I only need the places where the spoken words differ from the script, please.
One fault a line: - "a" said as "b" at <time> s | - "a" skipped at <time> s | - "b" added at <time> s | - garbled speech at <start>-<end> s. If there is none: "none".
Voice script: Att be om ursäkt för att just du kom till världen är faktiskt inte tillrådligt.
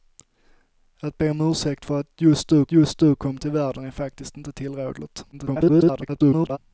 - "just du" added at 2.7 s
- garbled speech at 5.3-6.6 s